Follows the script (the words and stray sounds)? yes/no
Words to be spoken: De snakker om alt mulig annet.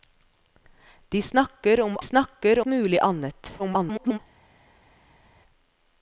no